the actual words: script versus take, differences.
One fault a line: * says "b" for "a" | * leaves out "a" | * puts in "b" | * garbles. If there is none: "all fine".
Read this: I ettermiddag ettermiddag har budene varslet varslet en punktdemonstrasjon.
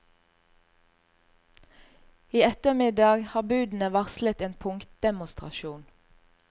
* leaves out "ettermiddag"
* leaves out "varslet"